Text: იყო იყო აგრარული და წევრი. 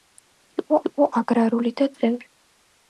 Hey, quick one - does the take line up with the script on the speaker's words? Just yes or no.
yes